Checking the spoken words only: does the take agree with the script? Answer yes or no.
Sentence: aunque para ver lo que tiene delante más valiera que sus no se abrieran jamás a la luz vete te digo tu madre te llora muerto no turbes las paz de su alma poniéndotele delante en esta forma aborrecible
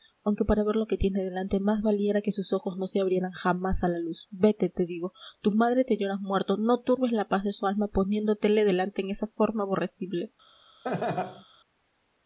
no